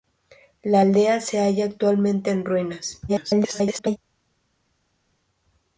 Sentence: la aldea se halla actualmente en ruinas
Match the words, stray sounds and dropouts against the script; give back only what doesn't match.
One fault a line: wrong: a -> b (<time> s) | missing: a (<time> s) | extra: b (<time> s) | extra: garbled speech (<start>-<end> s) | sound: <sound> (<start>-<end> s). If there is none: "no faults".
extra: garbled speech (3.1-4.0 s)